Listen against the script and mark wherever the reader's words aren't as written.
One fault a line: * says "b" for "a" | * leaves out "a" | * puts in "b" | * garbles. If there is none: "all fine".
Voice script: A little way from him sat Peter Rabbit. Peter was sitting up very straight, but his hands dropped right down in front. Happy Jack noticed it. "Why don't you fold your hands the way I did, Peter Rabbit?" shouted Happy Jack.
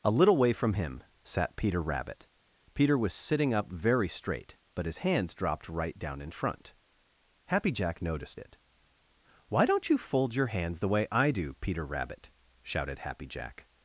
* says "do" for "did"